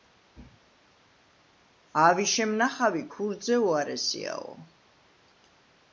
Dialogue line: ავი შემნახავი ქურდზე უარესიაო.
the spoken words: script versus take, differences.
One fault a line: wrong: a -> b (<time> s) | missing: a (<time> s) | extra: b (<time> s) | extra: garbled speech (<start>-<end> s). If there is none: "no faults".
no faults